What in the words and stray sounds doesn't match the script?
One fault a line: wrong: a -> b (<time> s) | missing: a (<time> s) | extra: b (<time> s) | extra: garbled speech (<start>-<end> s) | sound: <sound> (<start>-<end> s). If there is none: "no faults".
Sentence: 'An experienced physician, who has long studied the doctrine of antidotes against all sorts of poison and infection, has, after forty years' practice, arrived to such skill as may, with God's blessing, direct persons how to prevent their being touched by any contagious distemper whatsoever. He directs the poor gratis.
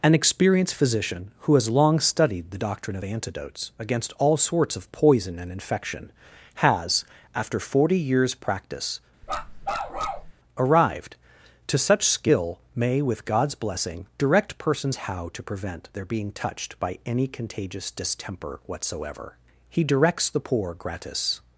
sound: bark (9.2-10.3 s)
missing: as (12.6 s)